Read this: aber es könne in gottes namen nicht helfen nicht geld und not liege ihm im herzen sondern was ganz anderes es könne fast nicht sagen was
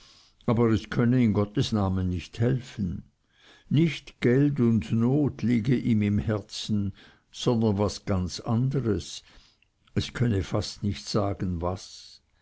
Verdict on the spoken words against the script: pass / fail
pass